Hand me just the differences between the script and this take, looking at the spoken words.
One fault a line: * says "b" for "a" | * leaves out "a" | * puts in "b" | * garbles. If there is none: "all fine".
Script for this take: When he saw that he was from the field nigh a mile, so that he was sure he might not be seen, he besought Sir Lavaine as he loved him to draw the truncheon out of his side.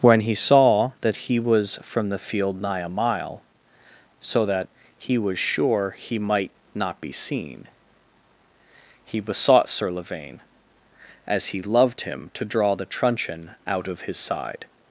all fine